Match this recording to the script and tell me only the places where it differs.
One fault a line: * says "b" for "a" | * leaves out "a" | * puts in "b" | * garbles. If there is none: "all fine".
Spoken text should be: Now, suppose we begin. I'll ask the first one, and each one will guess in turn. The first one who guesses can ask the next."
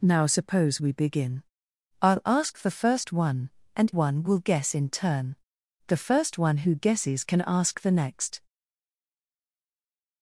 * leaves out "each"